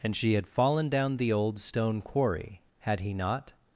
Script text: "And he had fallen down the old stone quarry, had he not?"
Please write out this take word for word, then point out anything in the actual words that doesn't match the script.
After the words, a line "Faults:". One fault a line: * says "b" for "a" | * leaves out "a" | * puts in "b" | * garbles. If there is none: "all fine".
"And she had fallen down the old stone quarry, had he not?"
Faults:
* says "she" for "he"